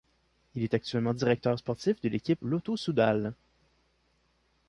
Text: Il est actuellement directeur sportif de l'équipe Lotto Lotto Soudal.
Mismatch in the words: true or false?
true